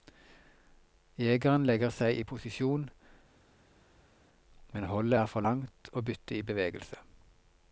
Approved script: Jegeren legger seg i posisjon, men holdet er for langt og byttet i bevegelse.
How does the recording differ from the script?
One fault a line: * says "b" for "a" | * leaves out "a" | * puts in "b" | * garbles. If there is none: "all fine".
all fine